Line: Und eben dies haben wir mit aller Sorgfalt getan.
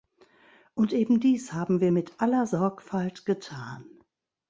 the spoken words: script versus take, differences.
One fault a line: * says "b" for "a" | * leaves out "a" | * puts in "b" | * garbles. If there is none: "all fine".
all fine